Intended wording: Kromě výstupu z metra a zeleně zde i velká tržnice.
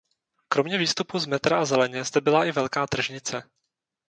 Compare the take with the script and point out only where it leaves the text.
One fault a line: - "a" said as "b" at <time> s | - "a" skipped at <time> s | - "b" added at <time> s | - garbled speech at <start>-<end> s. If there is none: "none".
- "byla" added at 2.2 s